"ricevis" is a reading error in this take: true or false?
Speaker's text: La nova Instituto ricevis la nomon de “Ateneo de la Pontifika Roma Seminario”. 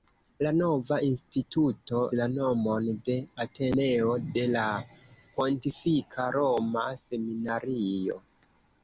true